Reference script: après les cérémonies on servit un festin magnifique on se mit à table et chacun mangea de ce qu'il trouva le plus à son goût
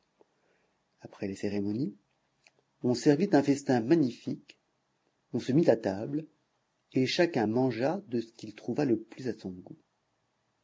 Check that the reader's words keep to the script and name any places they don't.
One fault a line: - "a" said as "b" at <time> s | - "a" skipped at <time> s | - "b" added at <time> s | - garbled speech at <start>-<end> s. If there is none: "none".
none